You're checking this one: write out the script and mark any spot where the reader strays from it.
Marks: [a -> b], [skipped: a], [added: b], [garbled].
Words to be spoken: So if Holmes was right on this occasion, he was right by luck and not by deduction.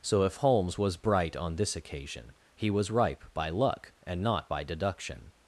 So if Holmes was [right -> bright] on this occasion, he was [right -> ripe] by luck and not by deduction.